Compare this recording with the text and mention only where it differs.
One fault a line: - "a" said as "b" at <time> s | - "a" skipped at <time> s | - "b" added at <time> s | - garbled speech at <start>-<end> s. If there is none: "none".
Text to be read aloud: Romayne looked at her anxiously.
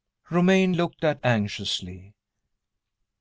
- "her" skipped at 1.2 s